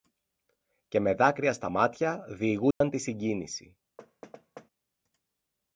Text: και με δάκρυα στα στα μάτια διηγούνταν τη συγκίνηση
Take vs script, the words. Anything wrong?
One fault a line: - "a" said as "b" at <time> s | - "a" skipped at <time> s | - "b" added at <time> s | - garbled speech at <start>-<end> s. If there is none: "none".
- "στα" skipped at 1.7 s